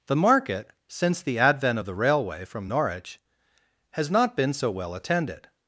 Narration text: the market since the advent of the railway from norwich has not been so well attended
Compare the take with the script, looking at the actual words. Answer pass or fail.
pass